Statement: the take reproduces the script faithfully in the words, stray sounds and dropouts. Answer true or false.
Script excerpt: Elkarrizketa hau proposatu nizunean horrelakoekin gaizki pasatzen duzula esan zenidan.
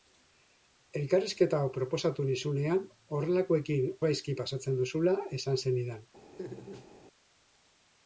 false